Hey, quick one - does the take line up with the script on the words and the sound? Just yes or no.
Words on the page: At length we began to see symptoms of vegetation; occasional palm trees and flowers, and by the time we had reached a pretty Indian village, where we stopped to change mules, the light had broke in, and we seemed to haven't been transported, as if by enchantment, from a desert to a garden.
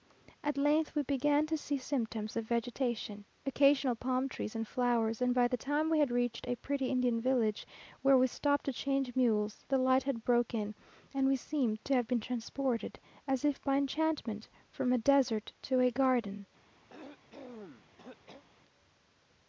no